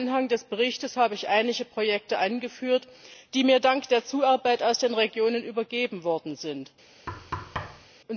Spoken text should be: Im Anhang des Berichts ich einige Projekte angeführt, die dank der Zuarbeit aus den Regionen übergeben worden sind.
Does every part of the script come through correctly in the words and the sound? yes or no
no